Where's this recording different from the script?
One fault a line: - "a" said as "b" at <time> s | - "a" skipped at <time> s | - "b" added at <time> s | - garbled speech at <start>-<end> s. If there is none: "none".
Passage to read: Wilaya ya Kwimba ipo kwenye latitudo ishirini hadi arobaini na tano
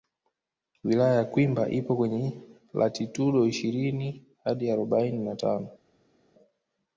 none